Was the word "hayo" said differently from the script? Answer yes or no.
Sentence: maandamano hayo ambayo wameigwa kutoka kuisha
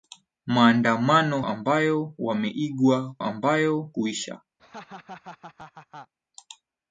yes